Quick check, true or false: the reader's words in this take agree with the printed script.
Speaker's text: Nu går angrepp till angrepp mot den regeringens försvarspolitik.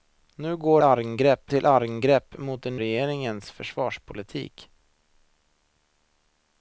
true